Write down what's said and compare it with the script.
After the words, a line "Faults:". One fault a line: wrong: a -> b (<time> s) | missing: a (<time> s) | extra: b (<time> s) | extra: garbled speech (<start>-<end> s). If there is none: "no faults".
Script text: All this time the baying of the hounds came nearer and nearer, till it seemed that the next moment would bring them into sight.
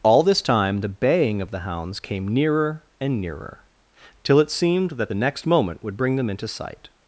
All this time the baying of the hounds came nearer and nearer, till it seemed that the next moment would bring them into sight.
Faults:
no faults